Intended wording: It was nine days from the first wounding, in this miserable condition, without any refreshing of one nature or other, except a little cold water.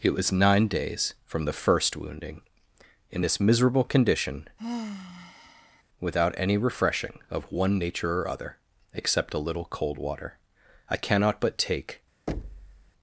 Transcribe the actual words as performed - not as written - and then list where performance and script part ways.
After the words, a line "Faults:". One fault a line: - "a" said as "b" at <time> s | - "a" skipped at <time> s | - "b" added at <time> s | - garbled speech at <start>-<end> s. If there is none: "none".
It was nine days from the first wounding, in this miserable condition, without any refreshing of one nature or other, except a little cold water. I cannot but take
Faults:
- "I cannot but take" added at 10.9 s